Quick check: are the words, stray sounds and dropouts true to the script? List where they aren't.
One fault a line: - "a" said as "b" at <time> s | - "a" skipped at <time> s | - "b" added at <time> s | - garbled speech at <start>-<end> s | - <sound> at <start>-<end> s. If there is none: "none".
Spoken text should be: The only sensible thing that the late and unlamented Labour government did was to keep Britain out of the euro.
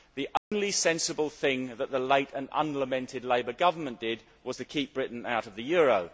- dropout at 0.4-0.5 s